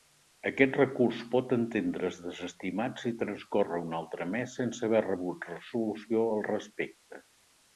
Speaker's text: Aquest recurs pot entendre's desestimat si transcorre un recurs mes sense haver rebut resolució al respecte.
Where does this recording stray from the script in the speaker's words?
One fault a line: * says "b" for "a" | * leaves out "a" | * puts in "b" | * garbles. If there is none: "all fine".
* says "altre" for "recurs"